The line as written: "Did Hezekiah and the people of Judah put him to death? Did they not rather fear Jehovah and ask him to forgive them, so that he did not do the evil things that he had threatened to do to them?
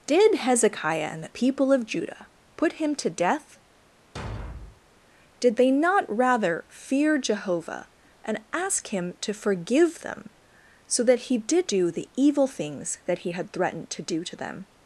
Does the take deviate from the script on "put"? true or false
false